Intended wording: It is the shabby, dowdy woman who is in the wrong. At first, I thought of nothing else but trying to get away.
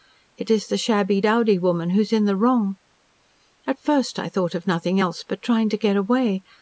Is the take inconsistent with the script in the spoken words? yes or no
no